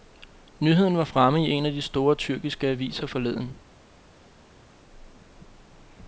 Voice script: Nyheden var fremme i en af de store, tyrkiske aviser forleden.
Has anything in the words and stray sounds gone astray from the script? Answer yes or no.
no